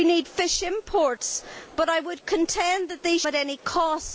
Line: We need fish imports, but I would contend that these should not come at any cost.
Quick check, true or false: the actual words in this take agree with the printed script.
false